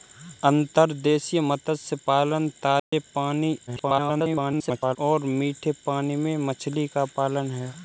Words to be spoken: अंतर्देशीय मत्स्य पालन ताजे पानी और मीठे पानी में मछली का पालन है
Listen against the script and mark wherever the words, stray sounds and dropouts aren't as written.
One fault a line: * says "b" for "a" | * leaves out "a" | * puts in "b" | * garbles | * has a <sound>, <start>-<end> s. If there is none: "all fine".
* has a dropout, 2.8-2.9 s
* garbles